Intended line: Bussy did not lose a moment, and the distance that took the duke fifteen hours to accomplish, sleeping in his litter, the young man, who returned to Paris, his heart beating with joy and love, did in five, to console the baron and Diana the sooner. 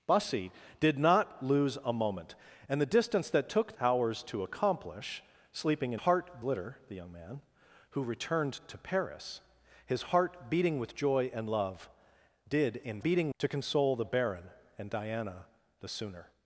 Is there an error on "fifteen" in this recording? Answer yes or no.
yes